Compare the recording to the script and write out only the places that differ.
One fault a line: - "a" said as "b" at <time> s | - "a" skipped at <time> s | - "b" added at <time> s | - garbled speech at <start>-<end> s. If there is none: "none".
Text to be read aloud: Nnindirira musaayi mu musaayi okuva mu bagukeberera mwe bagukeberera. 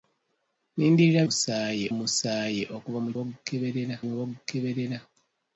none